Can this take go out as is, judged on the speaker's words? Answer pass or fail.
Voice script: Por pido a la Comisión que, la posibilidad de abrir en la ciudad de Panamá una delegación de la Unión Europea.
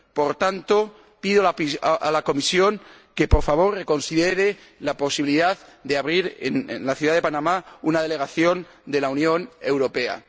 fail